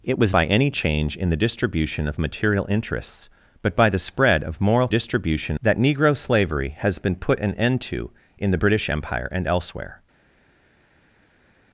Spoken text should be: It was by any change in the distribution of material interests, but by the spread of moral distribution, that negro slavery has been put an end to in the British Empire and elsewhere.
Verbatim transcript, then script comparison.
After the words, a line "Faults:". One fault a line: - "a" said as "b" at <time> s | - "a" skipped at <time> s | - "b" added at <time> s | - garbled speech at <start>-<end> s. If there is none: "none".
It was by any change in the distribution of material interests, but by the spread of moral distribution, that negro slavery has been put an end to in the British Empire and elsewhere.
Faults:
none